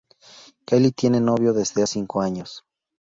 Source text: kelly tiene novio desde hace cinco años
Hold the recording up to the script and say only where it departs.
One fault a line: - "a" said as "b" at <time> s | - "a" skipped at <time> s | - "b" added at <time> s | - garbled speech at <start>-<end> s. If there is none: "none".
- "hace" skipped at 1.8 s